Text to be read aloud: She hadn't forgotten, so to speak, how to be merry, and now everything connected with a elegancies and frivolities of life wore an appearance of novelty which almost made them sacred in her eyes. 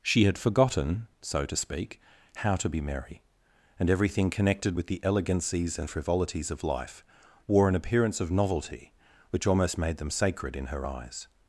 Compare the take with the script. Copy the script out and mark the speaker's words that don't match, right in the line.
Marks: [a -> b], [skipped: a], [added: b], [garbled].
She [hadn't -> had] forgotten, so to speak, how to be merry, and [skipped: now] everything connected with [a -> the] elegancies and frivolities of life wore an appearance of novelty which almost made them sacred in her eyes.